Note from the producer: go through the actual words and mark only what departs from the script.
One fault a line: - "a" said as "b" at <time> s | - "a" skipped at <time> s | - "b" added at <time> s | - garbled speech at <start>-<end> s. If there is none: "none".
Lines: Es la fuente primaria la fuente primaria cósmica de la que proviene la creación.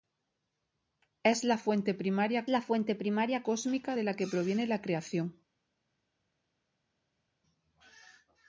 none